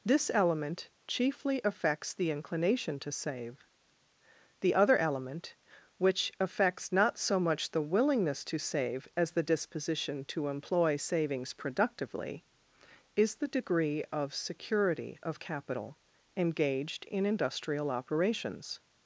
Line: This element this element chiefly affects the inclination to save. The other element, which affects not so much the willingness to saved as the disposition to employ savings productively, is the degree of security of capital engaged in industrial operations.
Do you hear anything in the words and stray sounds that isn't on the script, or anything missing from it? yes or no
yes